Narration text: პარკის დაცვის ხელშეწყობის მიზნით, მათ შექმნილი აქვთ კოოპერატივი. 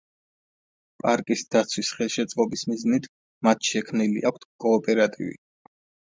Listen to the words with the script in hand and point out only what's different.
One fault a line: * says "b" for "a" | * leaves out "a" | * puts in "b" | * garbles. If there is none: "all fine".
all fine